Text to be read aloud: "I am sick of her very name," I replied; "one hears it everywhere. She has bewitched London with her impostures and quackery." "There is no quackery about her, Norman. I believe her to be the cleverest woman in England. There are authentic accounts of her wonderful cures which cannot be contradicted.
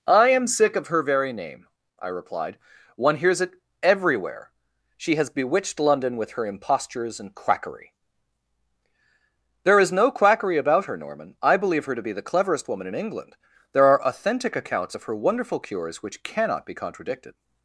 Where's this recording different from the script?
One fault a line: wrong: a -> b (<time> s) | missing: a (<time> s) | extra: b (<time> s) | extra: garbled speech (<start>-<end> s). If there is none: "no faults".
no faults